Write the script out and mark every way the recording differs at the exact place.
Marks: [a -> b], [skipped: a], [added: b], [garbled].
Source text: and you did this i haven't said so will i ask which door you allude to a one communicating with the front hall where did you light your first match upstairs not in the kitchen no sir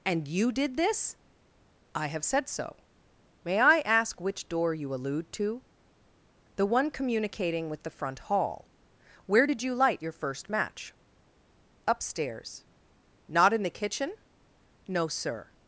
and you did this i [haven't -> have] said so [will -> may] i ask which door you allude to [a -> the] one communicating with the front hall where did you light your first match upstairs not in the kitchen no sir